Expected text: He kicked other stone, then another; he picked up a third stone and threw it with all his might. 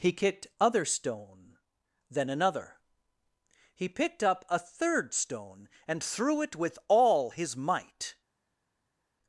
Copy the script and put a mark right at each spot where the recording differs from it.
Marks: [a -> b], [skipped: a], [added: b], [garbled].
He kicked other stone, then another; he picked up a third stone and threw it with all his might.